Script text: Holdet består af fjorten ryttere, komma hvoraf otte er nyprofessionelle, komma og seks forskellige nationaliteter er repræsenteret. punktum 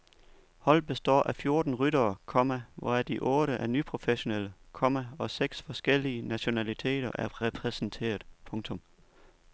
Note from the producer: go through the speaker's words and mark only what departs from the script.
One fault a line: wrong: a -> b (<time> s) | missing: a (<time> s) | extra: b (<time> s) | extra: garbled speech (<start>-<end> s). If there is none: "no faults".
extra: de (3.0 s)